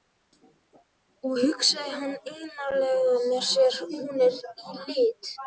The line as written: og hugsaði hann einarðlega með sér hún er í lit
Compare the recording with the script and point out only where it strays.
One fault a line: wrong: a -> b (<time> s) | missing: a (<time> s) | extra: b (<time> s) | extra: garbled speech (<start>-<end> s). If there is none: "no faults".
no faults